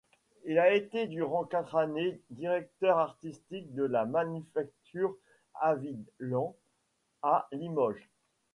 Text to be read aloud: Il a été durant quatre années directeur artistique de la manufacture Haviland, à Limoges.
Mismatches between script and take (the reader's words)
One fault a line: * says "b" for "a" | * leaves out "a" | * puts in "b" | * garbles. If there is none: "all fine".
all fine